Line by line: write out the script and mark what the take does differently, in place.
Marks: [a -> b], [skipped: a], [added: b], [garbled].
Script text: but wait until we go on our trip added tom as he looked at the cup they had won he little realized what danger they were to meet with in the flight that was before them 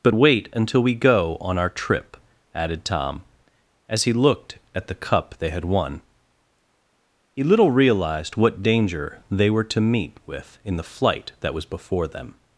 but wait until we go on our trip added tom as he looked at the cup they had won he little realized what danger they were to meet with in the flight that was before them